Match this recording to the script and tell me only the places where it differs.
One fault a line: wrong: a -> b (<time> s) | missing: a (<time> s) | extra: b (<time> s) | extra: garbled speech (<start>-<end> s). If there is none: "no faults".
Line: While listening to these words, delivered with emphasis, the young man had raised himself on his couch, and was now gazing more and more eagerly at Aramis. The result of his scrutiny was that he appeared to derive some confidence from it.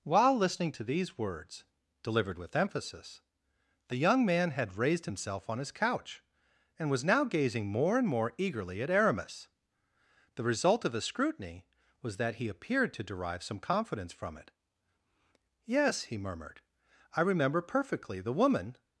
extra: Yes he murmured I remember perfectly The woman (15.7 s)